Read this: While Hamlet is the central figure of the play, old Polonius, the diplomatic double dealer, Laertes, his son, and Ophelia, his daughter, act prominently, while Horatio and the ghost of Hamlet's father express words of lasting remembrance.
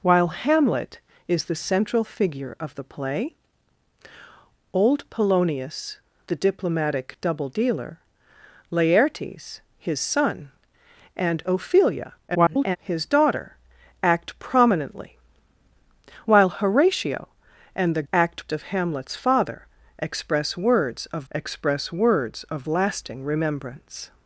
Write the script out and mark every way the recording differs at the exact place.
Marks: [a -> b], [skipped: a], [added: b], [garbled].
While Hamlet is the central figure of the play, old Polonius, the diplomatic double dealer, Laertes, his son, and Ophelia, [garbled] his daughter, act prominently, while Horatio and the [ghost -> act] of Hamlet's father express words of [added: express words of] lasting remembrance.